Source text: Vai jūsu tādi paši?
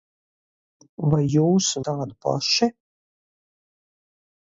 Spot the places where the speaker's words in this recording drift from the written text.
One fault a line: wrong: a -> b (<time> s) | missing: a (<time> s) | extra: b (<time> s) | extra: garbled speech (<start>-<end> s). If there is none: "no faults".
no faults